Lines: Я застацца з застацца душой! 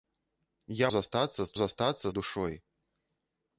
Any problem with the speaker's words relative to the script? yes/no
no